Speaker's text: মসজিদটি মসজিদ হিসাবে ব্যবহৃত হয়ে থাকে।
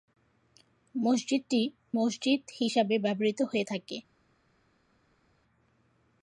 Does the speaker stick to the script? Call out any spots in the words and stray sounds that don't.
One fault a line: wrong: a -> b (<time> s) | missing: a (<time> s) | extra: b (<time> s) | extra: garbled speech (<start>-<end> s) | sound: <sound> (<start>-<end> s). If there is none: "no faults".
no faults